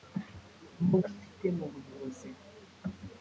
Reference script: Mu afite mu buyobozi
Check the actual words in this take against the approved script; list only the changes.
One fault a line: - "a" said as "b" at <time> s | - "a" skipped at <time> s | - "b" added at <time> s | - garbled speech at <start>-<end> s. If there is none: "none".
none